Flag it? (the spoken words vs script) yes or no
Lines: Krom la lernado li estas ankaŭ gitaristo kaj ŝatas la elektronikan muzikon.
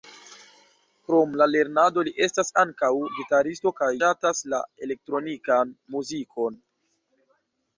no